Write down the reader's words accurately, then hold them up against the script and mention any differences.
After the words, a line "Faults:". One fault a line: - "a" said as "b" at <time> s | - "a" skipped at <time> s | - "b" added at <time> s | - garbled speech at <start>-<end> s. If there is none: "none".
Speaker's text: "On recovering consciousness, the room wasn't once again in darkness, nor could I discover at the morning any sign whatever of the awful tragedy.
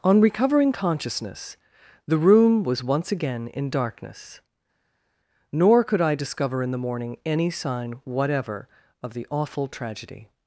"On recovering consciousness, the room was once again in darkness, nor could I discover in the morning any sign whatever of the awful tragedy.
Faults:
- "wasn't" said as "was" at 2.6 s
- "at" said as "in" at 6.6 s